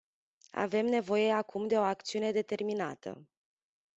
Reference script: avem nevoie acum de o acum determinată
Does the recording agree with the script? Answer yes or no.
no